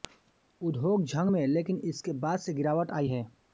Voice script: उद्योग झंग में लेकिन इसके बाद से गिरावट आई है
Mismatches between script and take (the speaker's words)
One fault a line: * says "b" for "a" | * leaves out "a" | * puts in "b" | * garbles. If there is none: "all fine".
all fine